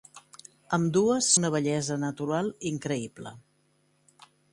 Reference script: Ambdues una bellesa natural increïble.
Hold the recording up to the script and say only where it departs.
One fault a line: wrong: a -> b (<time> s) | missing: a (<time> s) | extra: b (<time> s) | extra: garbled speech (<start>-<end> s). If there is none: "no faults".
no faults